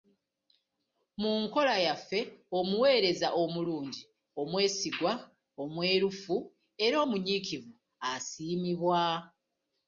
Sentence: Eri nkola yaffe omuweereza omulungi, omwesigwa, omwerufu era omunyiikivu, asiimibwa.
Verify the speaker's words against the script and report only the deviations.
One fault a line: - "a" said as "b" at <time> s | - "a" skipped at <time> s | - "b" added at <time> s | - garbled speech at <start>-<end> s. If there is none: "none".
- "Eri" said as "Mu" at 1.2 s